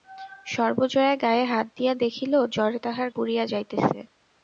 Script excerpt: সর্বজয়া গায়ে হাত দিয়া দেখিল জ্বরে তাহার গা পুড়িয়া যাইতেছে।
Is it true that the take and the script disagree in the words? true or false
true